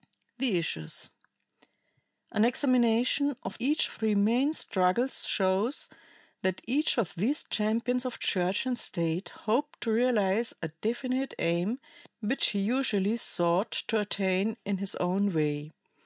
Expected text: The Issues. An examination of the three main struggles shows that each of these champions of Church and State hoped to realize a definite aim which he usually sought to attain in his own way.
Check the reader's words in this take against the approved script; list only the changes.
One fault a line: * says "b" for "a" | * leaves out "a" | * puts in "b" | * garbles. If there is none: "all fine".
* says "each" for "the"